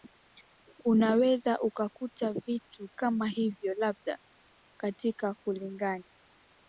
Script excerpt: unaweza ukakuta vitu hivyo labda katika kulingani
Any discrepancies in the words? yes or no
yes